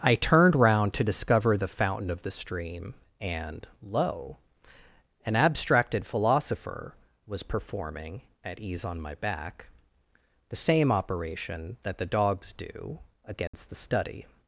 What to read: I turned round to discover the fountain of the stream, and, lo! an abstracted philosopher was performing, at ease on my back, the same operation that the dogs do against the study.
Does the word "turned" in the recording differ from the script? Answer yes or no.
no